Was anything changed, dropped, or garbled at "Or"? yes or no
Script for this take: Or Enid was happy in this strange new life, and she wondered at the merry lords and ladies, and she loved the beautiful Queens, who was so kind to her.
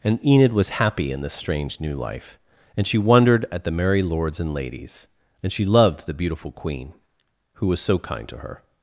yes